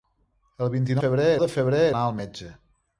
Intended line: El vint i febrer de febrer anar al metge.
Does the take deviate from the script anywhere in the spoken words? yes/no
no